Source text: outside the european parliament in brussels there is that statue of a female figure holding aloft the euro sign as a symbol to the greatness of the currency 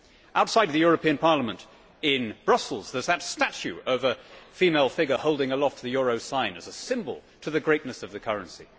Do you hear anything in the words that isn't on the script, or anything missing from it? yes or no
no